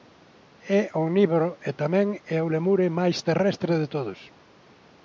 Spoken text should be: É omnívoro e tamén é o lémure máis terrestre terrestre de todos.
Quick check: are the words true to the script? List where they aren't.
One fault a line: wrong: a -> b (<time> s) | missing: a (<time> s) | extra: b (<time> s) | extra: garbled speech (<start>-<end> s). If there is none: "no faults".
missing: terrestre (3.7 s)